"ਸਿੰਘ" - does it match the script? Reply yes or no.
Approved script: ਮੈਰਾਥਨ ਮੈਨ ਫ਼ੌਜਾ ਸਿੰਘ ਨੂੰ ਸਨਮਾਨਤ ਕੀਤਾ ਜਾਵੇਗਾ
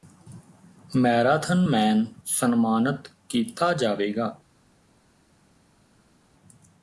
no